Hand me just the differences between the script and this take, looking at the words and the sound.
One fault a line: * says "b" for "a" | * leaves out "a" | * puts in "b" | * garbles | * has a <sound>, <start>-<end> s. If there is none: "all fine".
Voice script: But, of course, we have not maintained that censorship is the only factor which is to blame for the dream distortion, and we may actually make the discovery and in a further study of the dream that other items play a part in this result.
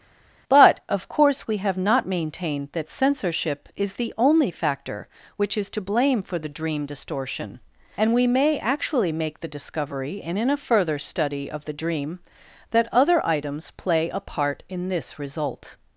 all fine